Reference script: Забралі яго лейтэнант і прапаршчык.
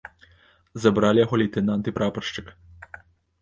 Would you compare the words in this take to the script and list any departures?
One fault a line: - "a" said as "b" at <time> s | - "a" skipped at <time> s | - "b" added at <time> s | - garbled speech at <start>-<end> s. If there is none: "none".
none